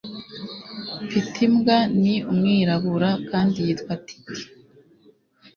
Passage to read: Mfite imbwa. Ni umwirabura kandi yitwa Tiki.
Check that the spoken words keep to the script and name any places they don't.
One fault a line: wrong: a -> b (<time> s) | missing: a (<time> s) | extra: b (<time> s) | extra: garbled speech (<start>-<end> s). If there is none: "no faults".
no faults